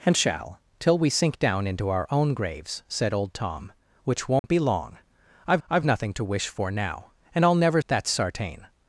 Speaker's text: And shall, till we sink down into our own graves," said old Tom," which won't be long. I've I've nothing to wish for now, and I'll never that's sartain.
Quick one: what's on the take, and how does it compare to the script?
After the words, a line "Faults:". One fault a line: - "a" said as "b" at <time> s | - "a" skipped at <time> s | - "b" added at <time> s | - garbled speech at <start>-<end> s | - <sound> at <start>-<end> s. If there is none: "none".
And shall, till we sink down into our own graves," said old Tom," which won't be long. I've I've nothing to wish for now, and I'll never that's sartain.
Faults:
- dropout at 4.4-4.4 s